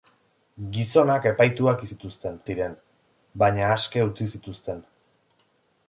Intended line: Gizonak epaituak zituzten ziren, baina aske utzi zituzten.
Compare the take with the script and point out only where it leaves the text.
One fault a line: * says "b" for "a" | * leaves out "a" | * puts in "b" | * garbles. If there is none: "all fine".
all fine